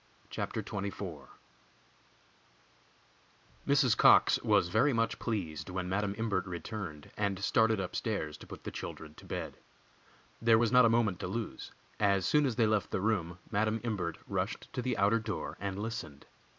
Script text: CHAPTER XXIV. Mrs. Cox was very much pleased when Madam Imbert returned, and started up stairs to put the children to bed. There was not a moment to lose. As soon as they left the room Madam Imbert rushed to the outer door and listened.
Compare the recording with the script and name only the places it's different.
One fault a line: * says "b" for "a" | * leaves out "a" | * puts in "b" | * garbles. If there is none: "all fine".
all fine